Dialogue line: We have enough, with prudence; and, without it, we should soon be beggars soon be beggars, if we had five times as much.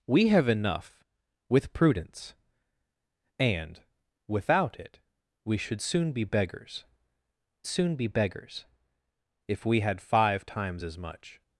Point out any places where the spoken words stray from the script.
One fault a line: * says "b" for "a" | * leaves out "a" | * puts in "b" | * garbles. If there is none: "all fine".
all fine